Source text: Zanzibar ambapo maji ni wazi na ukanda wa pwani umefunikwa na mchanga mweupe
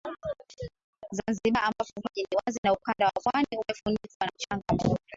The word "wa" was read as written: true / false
true